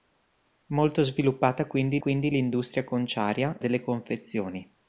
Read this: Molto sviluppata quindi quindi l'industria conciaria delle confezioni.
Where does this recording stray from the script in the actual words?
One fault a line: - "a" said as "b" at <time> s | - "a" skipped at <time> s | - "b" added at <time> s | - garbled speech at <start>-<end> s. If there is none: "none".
none